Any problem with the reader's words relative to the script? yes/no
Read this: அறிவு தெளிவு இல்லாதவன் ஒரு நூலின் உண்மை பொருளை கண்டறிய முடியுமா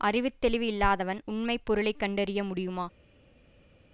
yes